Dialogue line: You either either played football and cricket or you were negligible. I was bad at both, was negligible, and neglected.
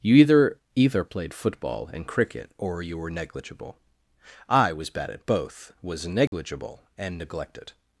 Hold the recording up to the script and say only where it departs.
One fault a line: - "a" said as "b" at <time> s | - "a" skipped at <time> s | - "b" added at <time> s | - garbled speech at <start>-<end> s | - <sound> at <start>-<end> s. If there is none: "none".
- dropout at 6.3-6.3 s